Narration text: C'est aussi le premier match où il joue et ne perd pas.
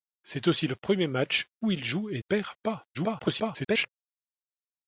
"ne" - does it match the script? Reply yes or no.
no